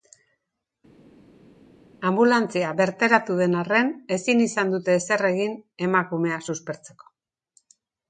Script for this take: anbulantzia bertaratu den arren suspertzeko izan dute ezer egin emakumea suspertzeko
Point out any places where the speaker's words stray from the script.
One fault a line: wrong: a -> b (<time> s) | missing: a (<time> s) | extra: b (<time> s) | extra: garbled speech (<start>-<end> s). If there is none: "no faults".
wrong: suspertzeko -> ezin (4.2 s)